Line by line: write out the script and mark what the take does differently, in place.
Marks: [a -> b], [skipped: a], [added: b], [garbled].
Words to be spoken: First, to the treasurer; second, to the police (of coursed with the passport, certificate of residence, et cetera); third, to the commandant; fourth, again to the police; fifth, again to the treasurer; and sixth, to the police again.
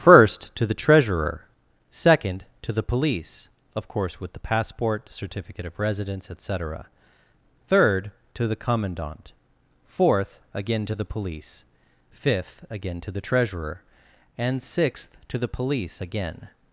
First, to the treasurer; second, to the police (of [coursed -> course] with the passport, certificate of residence, et cetera); third, to the commandant; fourth, again to the police; fifth, again to the treasurer; and sixth, to the police again.